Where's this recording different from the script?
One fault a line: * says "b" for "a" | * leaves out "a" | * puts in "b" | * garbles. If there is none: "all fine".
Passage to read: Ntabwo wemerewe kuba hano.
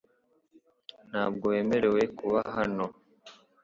all fine